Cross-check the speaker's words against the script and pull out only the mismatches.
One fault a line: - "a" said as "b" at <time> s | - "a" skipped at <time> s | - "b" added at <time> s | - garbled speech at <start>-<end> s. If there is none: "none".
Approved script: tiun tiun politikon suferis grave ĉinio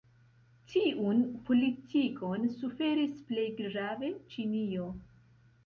- "tiun" skipped at 1.2 s
- "plej" added at 3.3 s